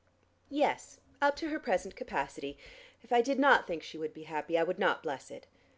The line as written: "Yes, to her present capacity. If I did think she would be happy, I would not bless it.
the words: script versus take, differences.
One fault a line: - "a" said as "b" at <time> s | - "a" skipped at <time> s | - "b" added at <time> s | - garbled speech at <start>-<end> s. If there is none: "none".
- "up" added at 1.2 s
- "not" added at 3.4 s